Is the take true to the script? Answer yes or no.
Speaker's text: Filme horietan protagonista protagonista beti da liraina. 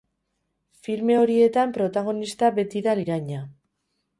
no